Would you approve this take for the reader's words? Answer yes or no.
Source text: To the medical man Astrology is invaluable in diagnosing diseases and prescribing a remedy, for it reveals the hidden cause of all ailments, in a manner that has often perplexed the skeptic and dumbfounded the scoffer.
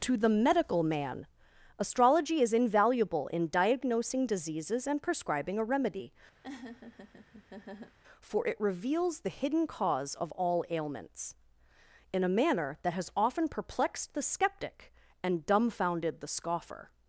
yes